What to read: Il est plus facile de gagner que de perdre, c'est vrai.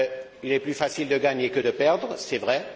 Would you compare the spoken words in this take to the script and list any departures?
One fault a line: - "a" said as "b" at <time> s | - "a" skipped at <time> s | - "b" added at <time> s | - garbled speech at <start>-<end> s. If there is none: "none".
none